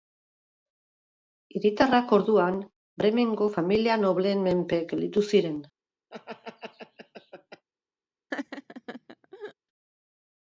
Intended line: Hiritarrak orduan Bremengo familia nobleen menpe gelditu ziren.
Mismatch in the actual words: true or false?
false